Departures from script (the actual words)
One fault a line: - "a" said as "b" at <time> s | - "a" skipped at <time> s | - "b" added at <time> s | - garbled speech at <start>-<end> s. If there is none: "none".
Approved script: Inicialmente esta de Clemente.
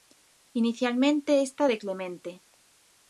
none